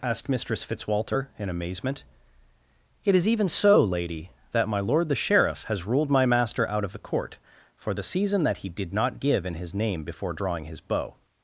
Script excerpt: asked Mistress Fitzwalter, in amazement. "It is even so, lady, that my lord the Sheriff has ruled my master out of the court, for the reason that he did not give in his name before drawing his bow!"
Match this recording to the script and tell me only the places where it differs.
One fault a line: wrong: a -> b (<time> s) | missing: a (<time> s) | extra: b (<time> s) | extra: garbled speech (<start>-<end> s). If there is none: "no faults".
wrong: reason -> season (8.0 s)